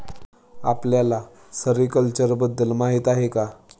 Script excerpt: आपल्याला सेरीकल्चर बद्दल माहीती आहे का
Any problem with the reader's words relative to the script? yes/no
no